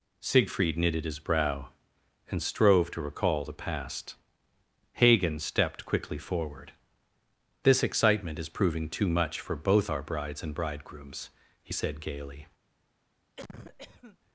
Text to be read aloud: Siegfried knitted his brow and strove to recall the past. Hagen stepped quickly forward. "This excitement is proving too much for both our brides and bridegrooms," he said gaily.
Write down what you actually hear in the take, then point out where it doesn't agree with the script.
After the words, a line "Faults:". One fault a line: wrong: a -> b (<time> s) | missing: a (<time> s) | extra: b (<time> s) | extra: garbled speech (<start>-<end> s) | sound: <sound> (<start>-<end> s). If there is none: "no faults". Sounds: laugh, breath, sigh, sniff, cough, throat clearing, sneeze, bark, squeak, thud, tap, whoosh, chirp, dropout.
Siegfried knitted his brow and strove to recall the past. Hagen stepped quickly forward. "This excitement is proving too much for both our brides and bridegrooms," he said gaily.
Faults:
sound: cough (13.4-14.2 s)